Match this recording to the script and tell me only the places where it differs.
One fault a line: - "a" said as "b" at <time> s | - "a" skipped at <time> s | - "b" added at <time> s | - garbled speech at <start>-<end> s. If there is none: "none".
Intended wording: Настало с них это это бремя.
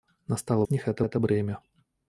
none